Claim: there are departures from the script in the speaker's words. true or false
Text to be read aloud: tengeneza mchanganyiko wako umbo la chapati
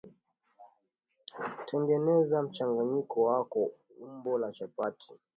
false